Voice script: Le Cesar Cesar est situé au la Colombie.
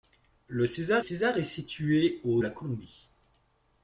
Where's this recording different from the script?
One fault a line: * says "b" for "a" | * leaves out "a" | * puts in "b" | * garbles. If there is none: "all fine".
all fine